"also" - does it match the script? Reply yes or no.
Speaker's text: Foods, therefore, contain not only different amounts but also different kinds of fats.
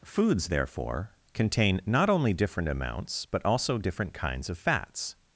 yes